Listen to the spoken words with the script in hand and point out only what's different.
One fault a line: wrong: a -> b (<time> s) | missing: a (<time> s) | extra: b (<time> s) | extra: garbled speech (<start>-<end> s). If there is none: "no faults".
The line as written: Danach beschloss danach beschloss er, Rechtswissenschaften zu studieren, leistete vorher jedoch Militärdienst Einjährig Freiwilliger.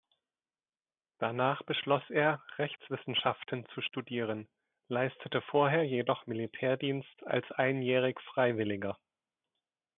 missing: danach beschloss (2.0 s)
extra: als (7.2 s)